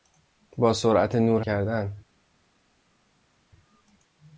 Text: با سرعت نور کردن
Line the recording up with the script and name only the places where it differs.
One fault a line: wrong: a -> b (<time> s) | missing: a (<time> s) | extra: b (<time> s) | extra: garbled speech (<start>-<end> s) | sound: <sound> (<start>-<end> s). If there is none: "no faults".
no faults